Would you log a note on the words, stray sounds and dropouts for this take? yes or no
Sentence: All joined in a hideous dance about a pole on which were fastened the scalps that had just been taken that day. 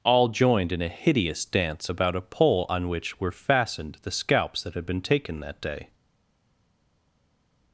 yes